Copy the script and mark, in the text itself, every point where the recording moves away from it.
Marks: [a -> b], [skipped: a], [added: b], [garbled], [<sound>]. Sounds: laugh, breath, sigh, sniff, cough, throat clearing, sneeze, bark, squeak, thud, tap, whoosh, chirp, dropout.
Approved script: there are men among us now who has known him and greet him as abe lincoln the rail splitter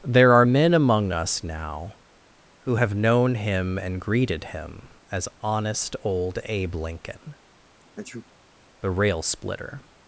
there are men among us now who [has -> have] known him and [greet -> greeted] him as [added: honest old] abe lincoln [sneeze] the rail splitter